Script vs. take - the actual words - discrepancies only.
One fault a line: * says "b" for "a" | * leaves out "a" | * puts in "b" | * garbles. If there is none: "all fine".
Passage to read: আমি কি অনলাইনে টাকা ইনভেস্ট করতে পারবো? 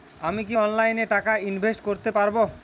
all fine